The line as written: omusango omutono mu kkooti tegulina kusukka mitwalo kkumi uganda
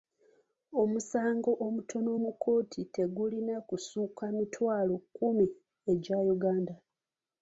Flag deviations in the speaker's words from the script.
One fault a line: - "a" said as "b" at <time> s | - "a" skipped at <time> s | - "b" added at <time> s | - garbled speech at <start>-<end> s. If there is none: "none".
- "egya" added at 5.9 s